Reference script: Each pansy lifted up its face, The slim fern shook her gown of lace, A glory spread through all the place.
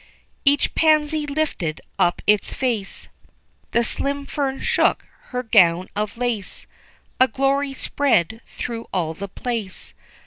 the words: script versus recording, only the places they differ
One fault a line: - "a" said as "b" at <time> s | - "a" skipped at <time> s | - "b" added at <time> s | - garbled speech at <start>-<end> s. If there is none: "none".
none